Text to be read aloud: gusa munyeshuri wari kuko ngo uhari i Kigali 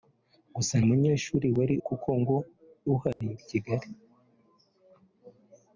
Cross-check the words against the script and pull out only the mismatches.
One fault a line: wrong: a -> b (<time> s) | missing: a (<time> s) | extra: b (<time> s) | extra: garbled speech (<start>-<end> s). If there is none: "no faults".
no faults